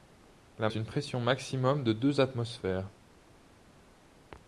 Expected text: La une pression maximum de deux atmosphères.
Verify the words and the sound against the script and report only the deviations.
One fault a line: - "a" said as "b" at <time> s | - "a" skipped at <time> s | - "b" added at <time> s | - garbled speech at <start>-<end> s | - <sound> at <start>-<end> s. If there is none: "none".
none